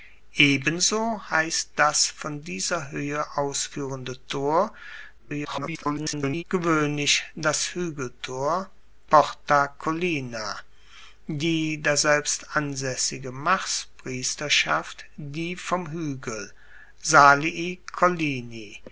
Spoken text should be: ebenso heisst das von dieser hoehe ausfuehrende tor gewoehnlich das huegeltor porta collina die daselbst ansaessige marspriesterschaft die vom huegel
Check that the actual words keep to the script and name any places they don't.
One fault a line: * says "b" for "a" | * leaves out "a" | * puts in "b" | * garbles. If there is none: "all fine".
* garbles